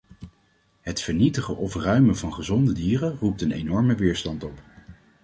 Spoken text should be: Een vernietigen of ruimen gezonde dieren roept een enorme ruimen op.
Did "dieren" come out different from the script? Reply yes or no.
no